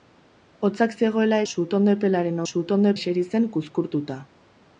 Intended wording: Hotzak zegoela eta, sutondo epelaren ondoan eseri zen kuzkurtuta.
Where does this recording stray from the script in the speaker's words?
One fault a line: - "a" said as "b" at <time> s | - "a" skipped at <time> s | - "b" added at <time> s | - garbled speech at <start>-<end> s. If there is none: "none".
- "eta" skipped at 1.4 s
- "ondoan" said as "sutondo" at 2.5 s